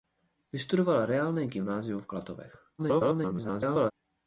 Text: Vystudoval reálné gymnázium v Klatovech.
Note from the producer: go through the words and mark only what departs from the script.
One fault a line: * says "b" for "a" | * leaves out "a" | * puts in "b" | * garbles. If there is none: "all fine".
* garbles